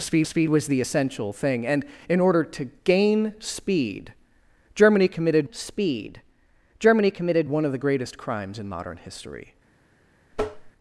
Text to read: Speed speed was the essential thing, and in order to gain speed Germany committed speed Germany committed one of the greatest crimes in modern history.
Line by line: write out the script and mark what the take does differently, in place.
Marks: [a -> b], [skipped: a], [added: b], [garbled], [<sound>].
Speed speed was the essential thing, and in order to gain speed Germany committed speed Germany committed one of the greatest crimes in modern history. [tap]